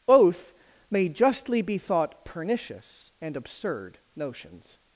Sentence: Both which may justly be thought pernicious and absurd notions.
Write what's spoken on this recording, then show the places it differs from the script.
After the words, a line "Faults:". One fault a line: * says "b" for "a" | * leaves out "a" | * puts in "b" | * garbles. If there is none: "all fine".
Both may justly be thought pernicious and absurd notions.
Faults:
* leaves out "which"